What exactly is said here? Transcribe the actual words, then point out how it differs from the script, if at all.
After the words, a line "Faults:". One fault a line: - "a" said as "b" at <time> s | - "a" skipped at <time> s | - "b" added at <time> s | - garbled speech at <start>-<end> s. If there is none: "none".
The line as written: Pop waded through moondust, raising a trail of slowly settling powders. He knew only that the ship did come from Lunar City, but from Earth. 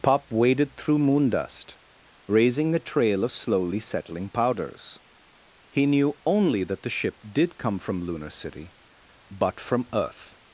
Pop waded through moondust, raising a trail of slowly settling powders. He knew only that the ship did come from Lunar City, but from Earth.
Faults:
none